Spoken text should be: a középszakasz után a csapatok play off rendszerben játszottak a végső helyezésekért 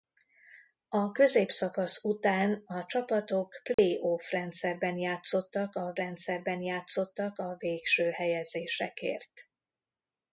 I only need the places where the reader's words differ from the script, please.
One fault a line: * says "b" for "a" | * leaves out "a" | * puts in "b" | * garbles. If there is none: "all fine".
* puts in "rendszerben játszottak a"